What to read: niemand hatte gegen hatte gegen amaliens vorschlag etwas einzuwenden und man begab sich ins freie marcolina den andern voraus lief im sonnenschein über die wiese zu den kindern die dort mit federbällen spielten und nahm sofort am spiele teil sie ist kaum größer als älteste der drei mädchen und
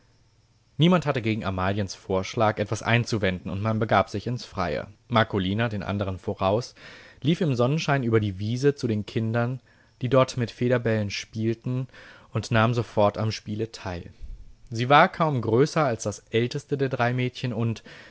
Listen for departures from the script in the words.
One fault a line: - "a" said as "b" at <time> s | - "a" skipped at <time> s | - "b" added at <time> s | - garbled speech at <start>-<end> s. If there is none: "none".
- "hatte gegen" skipped at 1.4 s
- "ist" said as "war" at 14.9 s
- "das" added at 16.0 s